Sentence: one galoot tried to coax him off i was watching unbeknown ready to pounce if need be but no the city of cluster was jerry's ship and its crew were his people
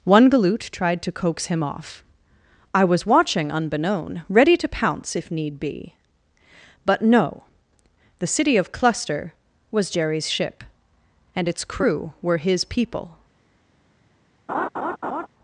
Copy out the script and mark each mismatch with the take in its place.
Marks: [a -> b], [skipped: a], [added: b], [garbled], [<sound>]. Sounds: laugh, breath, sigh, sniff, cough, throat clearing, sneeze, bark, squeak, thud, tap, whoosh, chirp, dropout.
one galoot tried to coax him off i was watching unbeknown ready to pounce if need be but no the city of cluster was jerry's ship and its crew were his people [laugh]